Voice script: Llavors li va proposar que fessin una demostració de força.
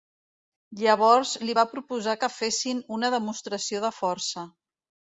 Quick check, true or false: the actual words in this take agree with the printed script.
true